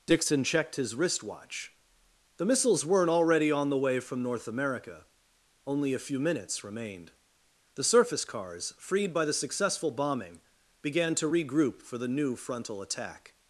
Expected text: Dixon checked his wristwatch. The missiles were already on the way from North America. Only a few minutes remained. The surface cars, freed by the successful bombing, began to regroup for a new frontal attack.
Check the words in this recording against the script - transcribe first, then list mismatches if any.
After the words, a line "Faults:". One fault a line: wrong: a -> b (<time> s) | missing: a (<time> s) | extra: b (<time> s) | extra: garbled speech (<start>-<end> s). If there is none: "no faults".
Dixon checked his wristwatch. The missiles weren't already on the way from North America. Only a few minutes remained. The surface cars, freed by the successful bombing, began to regroup for the new frontal attack.
Faults:
wrong: were -> weren't (2.9 s)
wrong: a -> the (12.0 s)